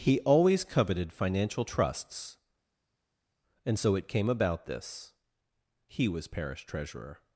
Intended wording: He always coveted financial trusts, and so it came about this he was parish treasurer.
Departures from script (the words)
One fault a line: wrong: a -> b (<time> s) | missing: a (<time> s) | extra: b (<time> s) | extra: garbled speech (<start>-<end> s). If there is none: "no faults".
no faults